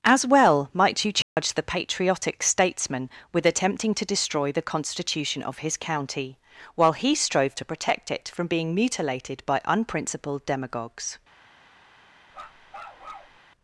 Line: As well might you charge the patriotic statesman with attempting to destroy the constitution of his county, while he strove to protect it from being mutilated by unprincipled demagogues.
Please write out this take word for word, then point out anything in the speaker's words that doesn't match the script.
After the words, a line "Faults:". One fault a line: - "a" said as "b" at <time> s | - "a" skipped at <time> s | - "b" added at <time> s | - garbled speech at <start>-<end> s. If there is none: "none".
As well might you charge the patriotic statesman with attempting to destroy the constitution of his county, while he strove to protect it from being mutilated by unprincipled demagogues.
Faults:
none